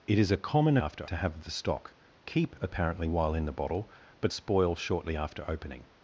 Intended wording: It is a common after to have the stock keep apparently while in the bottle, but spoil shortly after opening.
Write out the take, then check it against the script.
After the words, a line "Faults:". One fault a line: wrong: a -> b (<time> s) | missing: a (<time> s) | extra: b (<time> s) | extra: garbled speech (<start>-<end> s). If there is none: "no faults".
It is a common after to have the stock keep apparently while in the bottle, but spoil shortly after opening.
Faults:
no faults